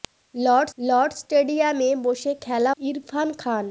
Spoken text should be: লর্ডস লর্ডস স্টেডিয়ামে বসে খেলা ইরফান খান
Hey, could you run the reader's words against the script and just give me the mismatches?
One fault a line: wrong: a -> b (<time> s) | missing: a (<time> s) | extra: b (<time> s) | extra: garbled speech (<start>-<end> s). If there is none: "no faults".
no faults